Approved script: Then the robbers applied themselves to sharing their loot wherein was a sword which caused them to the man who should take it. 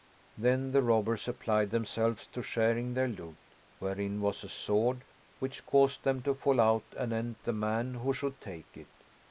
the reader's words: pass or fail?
fail